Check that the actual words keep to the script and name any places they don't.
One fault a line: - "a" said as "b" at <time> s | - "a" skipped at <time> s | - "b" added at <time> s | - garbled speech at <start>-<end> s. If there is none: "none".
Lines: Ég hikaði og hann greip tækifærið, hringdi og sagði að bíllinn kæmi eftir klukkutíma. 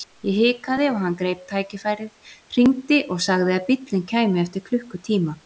none